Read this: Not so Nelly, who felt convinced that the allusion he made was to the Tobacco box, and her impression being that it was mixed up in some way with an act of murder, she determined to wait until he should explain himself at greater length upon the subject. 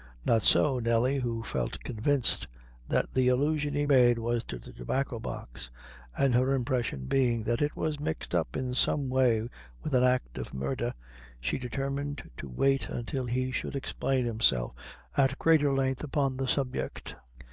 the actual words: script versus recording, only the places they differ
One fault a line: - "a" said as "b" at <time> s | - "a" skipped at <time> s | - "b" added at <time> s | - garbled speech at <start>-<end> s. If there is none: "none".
none